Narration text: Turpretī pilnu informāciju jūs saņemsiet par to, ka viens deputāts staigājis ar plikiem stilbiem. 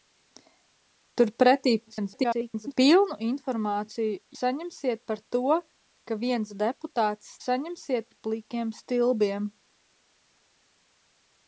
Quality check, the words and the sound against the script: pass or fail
fail